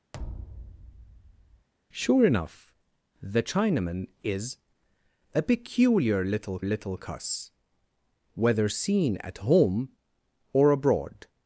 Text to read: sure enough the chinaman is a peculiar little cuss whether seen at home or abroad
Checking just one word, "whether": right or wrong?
right